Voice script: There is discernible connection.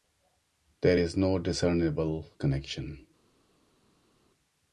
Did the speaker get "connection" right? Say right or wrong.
right